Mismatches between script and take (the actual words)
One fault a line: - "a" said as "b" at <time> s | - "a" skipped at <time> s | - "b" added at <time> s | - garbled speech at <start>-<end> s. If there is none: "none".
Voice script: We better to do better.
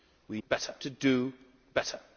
none